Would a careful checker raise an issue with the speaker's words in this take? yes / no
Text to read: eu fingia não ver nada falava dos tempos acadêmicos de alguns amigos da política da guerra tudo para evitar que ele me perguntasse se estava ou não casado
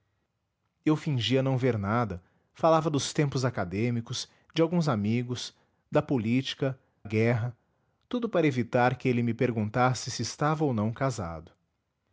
yes